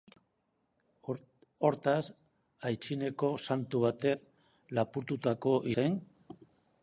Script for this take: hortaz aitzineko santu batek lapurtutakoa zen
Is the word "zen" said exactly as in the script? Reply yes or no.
yes